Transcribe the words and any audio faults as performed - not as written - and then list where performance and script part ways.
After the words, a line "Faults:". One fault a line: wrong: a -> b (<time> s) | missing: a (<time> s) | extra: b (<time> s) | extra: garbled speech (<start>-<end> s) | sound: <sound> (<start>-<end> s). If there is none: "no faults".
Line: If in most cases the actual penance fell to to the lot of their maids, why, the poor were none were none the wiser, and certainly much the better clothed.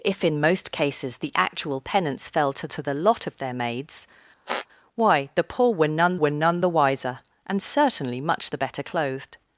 If in most cases the actual penance fell to to the lot of their maids, why, the poor were none were none the wiser, and certainly much the better clothed.
Faults:
sound: squeak (4.5-4.7 s)